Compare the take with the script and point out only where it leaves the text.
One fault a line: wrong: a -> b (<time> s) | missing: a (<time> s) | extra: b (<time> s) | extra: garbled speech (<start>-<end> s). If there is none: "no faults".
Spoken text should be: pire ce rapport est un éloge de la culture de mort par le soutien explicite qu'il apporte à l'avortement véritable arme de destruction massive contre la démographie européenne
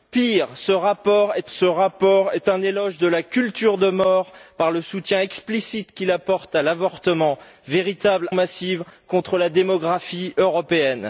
extra: ce rapport est (1.5 s)
missing: arme de destruction (8.3 s)